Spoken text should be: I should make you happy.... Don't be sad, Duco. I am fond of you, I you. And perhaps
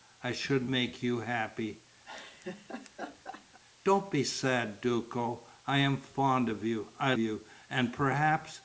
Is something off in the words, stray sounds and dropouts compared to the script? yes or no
yes